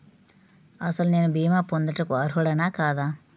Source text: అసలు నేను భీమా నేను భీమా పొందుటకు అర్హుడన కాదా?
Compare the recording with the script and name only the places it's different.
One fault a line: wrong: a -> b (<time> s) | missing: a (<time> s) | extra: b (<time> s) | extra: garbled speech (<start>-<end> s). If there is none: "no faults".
missing: నేను భీమా (1.6 s)